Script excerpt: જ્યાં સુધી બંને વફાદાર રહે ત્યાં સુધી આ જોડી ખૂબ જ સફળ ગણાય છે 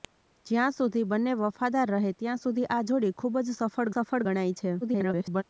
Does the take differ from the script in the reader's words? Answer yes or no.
yes